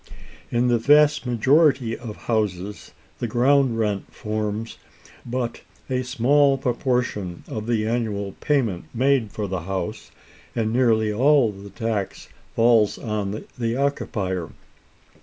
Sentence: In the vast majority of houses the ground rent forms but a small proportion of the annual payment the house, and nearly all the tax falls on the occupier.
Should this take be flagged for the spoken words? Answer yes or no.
yes